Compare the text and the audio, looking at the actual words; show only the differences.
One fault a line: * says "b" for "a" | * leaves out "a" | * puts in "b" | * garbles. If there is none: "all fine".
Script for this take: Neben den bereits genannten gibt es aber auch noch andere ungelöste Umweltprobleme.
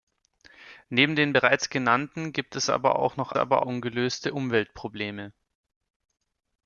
* says "aber" for "andere"